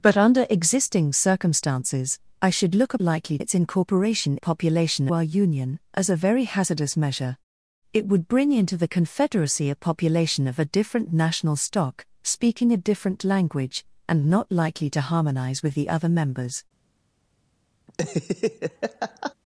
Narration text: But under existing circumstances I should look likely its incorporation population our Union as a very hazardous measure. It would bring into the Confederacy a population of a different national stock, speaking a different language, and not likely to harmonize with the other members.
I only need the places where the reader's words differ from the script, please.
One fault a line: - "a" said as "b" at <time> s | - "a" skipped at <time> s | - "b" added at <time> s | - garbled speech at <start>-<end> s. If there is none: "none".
none